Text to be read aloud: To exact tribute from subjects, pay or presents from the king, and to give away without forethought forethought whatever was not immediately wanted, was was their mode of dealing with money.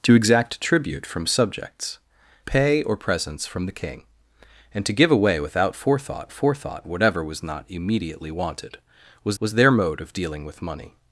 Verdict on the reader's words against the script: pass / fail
pass